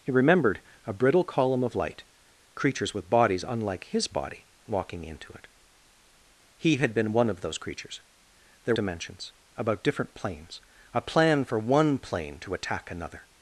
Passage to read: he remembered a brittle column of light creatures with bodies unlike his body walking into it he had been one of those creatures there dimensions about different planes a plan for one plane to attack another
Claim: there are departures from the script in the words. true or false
false